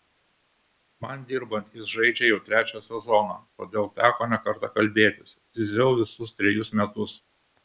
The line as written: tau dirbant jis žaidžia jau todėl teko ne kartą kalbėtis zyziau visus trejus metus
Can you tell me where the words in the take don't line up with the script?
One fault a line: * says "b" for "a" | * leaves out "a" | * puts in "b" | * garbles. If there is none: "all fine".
* says "man" for "tau"
* puts in "trečią sezoną"